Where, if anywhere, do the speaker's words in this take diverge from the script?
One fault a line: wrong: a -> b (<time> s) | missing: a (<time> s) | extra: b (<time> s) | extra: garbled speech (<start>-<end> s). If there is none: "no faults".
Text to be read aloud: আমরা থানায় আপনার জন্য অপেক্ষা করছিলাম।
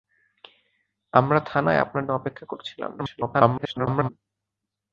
missing: জন্য (2.0 s)
extra: garbled speech (3.0-4.1 s)